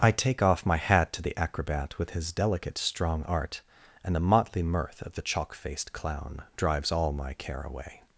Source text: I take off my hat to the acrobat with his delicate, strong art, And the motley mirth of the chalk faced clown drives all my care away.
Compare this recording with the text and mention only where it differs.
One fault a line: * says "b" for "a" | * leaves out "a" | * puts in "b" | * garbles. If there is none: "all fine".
all fine